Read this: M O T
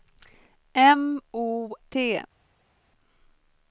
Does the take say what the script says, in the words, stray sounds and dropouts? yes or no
yes